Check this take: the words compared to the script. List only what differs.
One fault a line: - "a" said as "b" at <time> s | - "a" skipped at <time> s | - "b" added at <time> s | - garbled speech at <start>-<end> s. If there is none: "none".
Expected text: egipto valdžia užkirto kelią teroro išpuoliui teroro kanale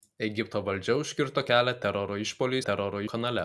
none